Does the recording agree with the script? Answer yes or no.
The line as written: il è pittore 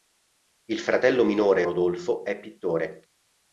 no